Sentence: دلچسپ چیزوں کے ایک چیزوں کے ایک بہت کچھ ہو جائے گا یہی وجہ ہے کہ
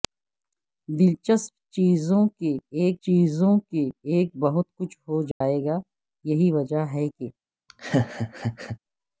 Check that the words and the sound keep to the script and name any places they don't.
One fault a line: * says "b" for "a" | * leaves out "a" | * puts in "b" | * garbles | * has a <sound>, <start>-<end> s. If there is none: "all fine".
* has a dropout, 5.3-5.4 s
* has a laugh, 7.7-8.8 s